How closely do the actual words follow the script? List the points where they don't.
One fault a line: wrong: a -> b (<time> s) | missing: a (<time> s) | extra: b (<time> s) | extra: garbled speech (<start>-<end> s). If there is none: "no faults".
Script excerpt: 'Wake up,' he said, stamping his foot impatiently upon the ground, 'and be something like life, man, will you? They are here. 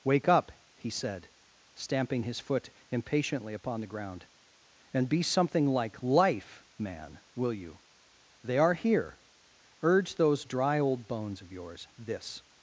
extra: Urge those dry old bones of yours this (9.8 s)